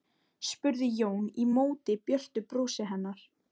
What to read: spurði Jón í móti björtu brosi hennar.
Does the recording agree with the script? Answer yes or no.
yes